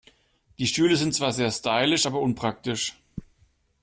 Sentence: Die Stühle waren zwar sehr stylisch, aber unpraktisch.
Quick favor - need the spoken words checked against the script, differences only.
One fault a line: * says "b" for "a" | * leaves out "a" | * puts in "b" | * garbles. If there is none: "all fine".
* says "sind" for "waren"